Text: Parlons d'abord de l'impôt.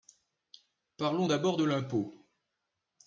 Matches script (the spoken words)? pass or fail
pass